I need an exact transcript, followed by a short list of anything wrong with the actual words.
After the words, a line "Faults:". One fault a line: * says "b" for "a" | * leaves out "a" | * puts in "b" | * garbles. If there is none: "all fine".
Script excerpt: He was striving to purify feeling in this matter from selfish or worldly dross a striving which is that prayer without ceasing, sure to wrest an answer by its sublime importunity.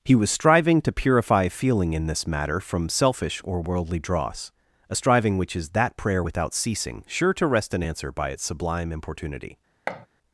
He was striving to purify feeling in this matter from selfish or worldly dross a striving which is that prayer without ceasing, sure to wrest an answer by its sublime importunity.
Faults:
all fine